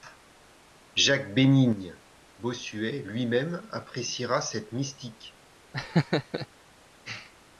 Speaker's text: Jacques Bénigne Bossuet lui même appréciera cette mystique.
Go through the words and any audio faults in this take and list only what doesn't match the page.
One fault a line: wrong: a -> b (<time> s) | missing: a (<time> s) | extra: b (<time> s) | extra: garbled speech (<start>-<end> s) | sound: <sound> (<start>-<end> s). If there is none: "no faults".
sound: laugh (5.7-6.5 s)